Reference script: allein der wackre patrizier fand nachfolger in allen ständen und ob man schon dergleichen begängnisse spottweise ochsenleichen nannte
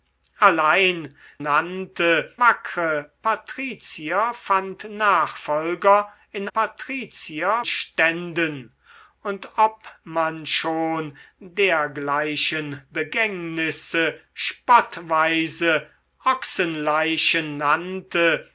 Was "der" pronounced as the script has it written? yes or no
no